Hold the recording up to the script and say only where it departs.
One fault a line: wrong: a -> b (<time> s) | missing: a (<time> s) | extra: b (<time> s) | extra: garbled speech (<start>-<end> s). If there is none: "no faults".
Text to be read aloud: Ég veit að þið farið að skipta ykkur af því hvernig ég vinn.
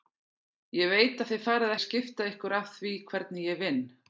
no faults